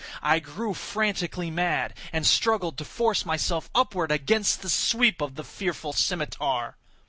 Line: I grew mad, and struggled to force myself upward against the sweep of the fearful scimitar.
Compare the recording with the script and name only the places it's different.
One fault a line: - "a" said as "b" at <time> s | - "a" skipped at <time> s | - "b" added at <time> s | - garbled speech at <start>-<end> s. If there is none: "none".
- "frantically" added at 0.7 s